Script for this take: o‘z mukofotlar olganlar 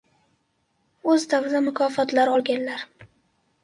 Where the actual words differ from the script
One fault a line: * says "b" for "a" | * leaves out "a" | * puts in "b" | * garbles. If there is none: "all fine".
* puts in "davrida"